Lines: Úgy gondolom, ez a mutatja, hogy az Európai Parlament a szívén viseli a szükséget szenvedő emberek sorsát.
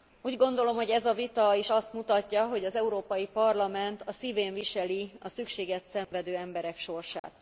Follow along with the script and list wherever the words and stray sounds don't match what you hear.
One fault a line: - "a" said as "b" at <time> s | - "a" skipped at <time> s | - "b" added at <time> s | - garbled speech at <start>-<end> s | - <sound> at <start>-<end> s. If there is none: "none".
- "hogy" added at 0.8 s
- "vita is azt" added at 1.1 s
- dropout at 6.0-6.1 s
- dropout at 7.2-7.2 s